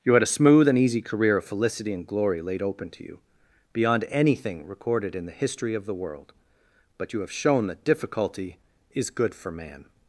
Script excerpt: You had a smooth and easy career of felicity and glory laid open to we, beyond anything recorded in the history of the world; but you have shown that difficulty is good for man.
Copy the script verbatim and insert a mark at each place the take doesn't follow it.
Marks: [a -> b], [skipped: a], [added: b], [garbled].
You had a smooth and easy career of felicity and glory laid open to [we, -> you] beyond anything recorded in the history of the world; but you have shown that difficulty is good for man.